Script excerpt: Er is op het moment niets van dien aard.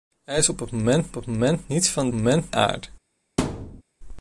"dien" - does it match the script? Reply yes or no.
no